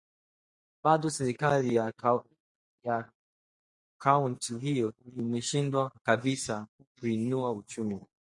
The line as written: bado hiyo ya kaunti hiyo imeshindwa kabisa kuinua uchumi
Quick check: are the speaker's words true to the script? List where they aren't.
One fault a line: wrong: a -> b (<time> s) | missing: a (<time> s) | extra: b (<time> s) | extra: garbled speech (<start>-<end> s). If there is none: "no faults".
wrong: hiyo -> serikali (1.1 s)